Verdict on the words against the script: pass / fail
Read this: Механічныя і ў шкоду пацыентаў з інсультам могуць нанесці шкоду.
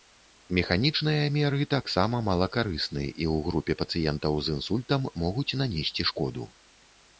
fail